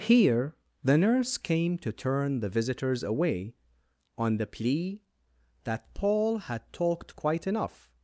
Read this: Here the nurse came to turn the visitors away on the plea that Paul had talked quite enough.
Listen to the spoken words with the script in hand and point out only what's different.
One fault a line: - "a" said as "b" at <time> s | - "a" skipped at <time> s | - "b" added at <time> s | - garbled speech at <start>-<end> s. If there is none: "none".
none